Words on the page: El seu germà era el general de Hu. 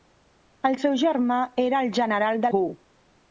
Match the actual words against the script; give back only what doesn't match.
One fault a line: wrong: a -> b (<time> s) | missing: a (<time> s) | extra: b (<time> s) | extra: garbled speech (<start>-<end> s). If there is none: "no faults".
no faults